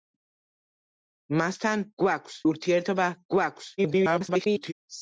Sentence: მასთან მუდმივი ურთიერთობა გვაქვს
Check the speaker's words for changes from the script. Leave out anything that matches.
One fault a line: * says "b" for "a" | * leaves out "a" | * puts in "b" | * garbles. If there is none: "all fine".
* says "გვაქვს" for "მუდმივი"
* garbles